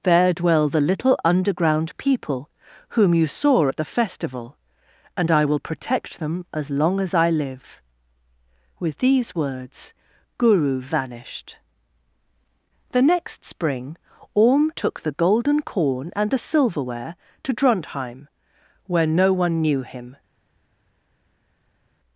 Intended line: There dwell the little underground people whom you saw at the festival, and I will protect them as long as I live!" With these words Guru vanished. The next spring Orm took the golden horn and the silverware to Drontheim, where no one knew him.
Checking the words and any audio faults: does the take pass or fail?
fail